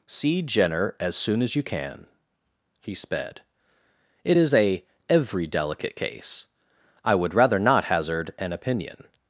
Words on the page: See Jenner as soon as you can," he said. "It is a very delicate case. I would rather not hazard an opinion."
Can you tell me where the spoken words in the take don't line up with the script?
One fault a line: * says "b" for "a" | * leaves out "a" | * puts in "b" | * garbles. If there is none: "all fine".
* says "sped" for "said"
* says "every" for "very"